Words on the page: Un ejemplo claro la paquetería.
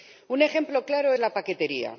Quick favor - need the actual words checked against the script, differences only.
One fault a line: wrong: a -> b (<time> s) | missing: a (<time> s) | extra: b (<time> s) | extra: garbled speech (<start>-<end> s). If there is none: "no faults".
no faults